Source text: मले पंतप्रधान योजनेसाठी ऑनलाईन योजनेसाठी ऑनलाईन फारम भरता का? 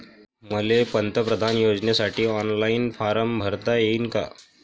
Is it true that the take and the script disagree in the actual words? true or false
true